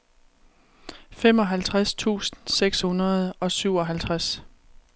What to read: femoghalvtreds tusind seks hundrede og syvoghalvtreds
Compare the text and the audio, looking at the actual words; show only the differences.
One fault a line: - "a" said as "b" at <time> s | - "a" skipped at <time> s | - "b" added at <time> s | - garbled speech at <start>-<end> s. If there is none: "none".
none